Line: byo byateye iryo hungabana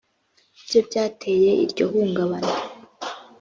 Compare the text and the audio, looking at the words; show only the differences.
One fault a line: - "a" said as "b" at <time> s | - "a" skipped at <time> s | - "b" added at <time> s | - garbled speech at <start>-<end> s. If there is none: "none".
none